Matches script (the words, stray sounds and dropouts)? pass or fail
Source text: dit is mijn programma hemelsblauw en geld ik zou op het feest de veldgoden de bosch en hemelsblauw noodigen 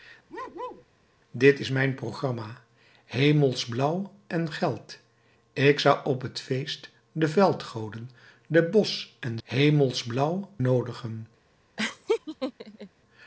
fail